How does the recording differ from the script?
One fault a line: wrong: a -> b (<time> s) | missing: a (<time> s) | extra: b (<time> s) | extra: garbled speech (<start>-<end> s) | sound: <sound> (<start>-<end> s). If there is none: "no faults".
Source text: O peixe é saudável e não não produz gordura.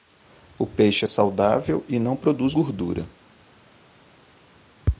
missing: não (2.1 s)